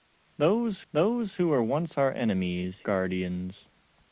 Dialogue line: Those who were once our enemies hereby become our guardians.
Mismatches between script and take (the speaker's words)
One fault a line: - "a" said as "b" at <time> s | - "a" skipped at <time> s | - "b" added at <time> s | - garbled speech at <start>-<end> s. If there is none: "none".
- "those" added at 0.9 s
- "hereby become our" skipped at 2.8 s